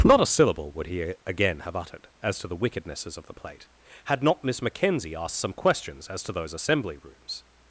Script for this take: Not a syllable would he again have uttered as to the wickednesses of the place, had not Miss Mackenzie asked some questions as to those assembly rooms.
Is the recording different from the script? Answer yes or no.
yes